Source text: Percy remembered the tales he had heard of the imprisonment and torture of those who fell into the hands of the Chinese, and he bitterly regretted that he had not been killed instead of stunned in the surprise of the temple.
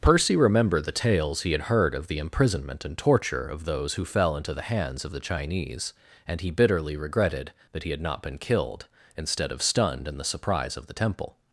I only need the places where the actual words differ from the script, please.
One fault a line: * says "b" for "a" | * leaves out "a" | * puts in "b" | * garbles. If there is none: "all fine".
all fine